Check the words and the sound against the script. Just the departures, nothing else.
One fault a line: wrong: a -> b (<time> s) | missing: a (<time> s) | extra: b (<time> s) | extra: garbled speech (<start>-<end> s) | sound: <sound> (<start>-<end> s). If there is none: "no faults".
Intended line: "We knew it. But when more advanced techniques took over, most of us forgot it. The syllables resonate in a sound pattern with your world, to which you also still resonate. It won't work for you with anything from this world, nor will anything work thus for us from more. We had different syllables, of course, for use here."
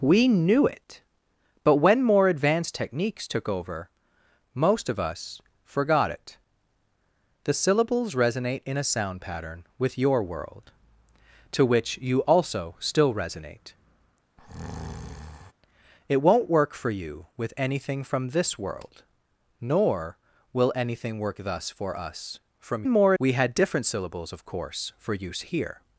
sound: breath (14.4-15.5 s)